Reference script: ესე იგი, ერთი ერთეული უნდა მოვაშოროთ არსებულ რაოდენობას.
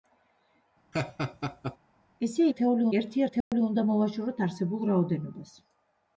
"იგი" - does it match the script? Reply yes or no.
no